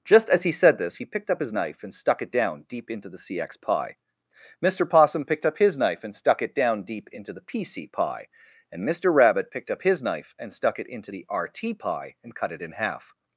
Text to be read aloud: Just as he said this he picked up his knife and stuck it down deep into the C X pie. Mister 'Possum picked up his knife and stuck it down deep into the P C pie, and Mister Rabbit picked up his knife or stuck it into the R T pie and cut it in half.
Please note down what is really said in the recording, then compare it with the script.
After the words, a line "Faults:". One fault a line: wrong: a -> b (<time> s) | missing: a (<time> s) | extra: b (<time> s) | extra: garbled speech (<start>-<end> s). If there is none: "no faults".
Just as he said this he picked up his knife and stuck it down deep into the C X pie. Mister 'Possum picked up his knife and stuck it down deep into the P C pie, and Mister Rabbit picked up his knife and stuck it into the R T pie and cut it in half.
Faults:
wrong: or -> and (10.4 s)